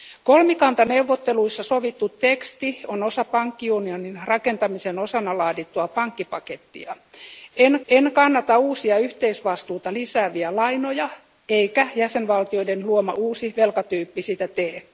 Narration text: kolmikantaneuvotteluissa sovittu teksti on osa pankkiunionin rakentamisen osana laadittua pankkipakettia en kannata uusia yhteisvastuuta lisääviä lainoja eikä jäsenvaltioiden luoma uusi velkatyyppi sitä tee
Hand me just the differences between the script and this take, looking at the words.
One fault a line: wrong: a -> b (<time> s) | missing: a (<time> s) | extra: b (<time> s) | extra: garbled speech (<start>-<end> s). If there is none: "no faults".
extra: en (7.9 s)